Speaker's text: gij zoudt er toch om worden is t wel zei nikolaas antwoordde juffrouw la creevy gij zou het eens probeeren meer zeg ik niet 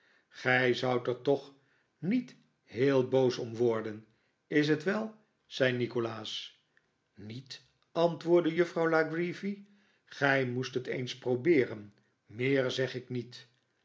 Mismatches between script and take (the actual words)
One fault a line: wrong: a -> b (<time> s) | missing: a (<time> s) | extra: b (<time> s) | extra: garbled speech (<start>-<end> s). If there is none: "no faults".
extra: niet heel boos (2.0 s)
extra: niet (7.1 s)
wrong: zou -> moest (10.5 s)